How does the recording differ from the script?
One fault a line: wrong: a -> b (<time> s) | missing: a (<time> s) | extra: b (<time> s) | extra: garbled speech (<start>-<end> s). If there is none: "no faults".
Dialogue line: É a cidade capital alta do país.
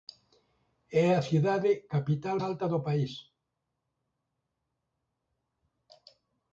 no faults